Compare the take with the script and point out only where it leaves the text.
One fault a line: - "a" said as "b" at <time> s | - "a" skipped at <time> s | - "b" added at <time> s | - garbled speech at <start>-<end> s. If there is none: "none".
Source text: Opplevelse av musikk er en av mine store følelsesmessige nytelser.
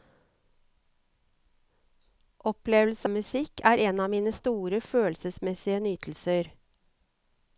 - "av" skipped at 3.1 s